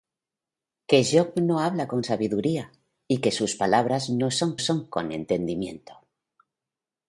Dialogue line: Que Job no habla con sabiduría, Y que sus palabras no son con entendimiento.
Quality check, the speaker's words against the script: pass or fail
fail